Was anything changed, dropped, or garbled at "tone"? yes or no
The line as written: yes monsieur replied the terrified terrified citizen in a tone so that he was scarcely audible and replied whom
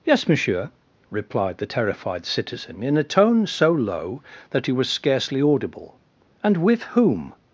no